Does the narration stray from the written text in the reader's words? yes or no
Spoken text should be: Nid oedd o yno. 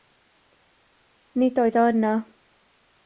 no